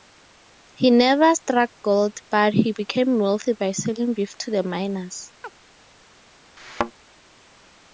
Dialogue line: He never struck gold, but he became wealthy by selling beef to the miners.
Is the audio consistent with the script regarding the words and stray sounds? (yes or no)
no